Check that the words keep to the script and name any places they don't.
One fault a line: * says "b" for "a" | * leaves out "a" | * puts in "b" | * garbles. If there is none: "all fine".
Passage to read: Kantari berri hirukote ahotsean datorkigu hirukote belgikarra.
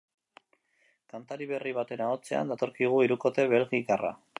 * says "baten" for "hirukote"